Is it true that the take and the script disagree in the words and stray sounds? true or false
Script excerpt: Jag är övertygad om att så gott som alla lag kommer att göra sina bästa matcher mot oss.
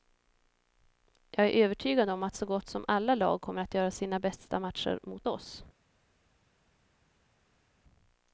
false